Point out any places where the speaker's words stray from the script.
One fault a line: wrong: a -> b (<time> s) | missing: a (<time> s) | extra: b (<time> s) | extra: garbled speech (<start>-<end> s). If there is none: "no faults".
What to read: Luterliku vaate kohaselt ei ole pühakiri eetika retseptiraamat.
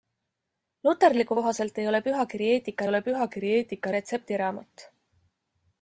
missing: vaate (1.4 s)
extra: ole pühakiri eetika (2.9 s)